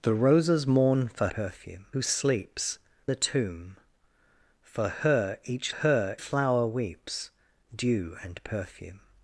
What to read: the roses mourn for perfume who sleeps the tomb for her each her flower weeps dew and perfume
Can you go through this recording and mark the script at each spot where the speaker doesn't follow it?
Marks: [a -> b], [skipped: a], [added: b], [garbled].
the roses mourn for perfume who sleeps the tomb for her each her flower weeps dew and perfume